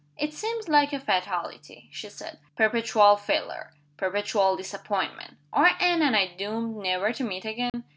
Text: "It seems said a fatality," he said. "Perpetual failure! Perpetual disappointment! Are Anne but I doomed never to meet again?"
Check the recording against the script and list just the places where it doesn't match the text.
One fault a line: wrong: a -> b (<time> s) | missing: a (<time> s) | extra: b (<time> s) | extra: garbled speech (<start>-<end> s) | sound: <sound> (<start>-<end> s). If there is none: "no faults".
wrong: said -> like (0.6 s)
wrong: he -> she (1.9 s)
wrong: but -> and (6.0 s)
sound: dropout (7.7-7.7 s)